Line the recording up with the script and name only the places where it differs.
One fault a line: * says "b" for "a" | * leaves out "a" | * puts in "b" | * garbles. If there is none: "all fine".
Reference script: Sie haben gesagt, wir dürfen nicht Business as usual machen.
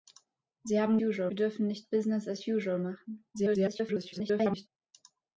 * says "usual" for "gesagt"
* garbles